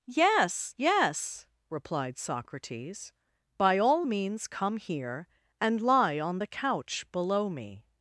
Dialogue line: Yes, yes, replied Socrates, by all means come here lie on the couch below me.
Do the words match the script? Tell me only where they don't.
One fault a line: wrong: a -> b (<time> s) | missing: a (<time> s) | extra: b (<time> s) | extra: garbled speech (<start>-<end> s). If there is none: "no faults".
extra: and (5.6 s)